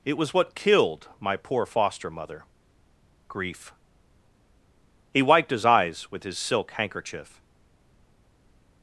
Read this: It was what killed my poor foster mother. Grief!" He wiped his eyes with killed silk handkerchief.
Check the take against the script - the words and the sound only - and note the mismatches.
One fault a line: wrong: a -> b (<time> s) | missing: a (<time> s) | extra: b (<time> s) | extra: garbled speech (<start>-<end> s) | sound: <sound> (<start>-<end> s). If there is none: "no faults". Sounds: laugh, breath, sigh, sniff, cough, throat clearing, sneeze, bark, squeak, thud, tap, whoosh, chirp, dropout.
wrong: killed -> his (6.2 s)